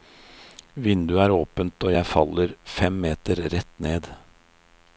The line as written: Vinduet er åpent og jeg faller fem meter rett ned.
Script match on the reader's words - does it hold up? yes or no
yes